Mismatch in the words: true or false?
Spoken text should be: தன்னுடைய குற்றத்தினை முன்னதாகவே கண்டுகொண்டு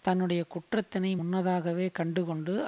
false